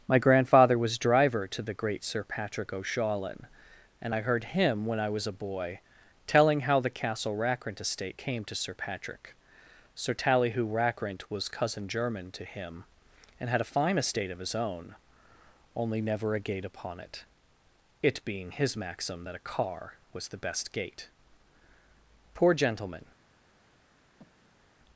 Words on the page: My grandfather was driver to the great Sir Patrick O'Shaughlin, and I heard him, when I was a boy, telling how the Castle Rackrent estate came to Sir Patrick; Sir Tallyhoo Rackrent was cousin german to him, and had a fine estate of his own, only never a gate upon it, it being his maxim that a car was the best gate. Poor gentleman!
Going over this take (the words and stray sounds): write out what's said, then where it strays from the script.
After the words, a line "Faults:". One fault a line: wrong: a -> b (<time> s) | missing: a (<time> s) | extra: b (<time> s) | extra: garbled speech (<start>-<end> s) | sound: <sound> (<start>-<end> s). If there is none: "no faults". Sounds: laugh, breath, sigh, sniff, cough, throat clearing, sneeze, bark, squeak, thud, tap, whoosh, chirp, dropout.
My grandfather was driver to the great Sir Patrick O'Shaughlin, and I heard him, when I was a boy, telling how the Castle Rackrent estate came to Sir Patrick; Sir Tallyhoo Rackrent was cousin german to him, and had a fine estate of his own, only never a gate upon it, it being his maxim that a car was the best gate. Poor gentleman!
Faults:
sound: breath (24.2-24.7 s)